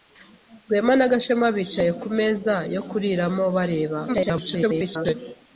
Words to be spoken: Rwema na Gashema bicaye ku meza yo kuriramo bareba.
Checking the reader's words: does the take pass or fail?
fail